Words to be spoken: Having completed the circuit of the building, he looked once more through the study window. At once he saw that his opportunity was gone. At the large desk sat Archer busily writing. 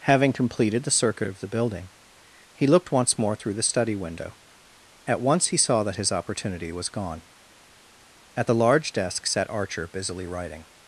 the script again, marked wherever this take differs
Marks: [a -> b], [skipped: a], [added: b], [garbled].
Having completed the circuit of the building, he looked once more through the study window. At once he saw that his opportunity was gone. At the large desk sat Archer busily writing.